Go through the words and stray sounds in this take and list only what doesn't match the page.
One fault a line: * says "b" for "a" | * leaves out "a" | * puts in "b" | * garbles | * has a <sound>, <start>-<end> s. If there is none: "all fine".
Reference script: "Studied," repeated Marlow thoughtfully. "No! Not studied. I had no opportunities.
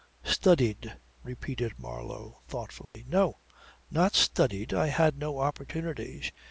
* has a dropout, 2.9-2.9 s